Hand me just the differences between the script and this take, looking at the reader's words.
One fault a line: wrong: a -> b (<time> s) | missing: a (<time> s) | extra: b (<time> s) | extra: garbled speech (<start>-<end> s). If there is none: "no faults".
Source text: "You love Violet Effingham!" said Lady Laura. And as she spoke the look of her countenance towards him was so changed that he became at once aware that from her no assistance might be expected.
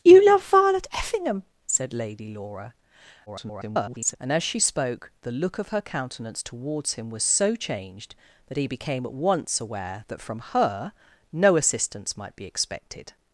extra: garbled speech (3.3-4.2 s)